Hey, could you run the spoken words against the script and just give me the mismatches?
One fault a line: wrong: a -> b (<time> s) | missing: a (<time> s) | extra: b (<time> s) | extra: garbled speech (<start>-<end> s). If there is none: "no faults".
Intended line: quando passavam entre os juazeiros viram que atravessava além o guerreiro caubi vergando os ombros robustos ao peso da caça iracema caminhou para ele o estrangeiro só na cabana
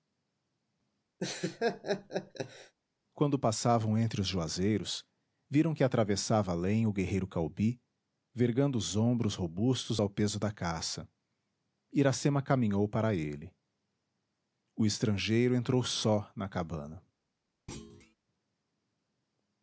extra: entrou (15.5 s)